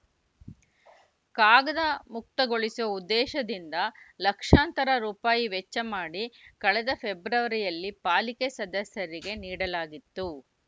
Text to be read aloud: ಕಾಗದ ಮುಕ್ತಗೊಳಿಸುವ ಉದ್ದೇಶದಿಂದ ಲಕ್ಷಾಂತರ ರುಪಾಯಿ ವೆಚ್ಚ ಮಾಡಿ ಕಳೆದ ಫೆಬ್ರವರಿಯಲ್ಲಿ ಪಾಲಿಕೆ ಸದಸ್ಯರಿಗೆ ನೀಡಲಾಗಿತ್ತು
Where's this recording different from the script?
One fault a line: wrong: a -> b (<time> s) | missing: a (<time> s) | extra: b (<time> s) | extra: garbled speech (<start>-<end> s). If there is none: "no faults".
no faults